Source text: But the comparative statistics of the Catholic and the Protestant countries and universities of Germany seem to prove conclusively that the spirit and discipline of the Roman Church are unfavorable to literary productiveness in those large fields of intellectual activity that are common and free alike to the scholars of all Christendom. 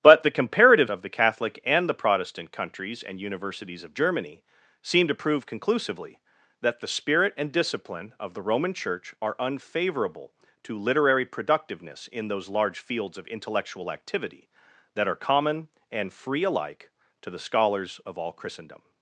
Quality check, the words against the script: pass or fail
fail